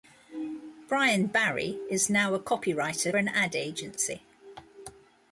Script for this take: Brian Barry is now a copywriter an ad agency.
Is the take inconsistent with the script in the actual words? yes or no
no